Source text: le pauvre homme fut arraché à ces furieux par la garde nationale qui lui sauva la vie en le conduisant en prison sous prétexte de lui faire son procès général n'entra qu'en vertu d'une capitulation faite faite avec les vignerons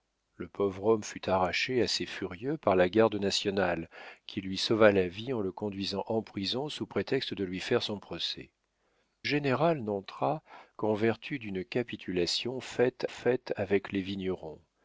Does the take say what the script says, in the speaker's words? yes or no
yes